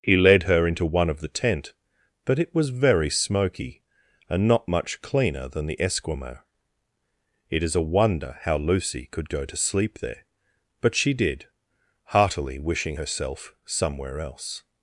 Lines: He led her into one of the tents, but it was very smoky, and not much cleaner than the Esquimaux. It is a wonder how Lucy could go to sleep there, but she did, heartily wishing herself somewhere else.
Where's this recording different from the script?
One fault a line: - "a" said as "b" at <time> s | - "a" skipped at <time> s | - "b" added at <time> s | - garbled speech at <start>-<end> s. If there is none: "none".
- "tents" said as "tent" at 1.3 s